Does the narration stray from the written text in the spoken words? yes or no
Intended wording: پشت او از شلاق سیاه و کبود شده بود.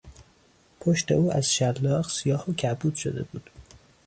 no